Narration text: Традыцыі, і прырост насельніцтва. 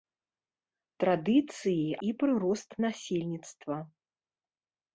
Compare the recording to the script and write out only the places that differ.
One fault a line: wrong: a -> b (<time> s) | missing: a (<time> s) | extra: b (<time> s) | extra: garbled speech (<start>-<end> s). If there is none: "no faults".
no faults